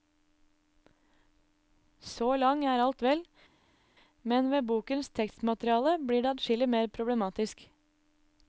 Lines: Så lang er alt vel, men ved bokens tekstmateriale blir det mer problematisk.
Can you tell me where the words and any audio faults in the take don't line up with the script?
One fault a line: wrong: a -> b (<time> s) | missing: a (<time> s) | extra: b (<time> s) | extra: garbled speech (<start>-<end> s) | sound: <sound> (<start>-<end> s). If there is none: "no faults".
extra: adskillig (6.3 s)